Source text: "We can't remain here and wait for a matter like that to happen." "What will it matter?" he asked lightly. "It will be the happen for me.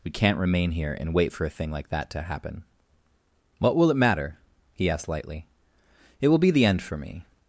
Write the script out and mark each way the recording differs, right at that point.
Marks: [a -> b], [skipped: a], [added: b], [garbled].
"We can't remain here and wait for a [matter -> thing] like that to happen." "What will it matter?" he asked lightly. "It will be the [happen -> end] for me.